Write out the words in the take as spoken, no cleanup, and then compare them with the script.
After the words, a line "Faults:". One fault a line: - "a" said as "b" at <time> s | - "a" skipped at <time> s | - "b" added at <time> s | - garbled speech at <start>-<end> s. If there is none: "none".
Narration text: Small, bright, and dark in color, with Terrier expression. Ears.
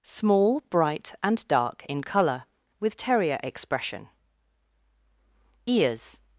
Small, bright, and dark in color, with Terrier expression. Ears.
Faults:
none